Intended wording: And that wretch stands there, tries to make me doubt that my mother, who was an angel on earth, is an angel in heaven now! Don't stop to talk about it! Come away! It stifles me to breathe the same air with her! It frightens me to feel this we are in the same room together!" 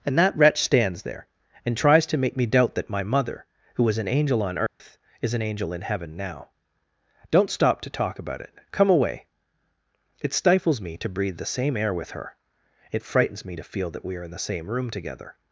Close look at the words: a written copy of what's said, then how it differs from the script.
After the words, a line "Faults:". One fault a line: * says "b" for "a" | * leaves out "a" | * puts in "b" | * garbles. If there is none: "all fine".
And that wretch stands there, and tries to make me doubt that my mother, who was an angel on earth, is an angel in heaven now! Don't stop to talk about it! Come away! It stifles me to breathe the same air with her! It frightens me to feel that we are in the same room together!"
Faults:
* puts in "and"
* says "that" for "this"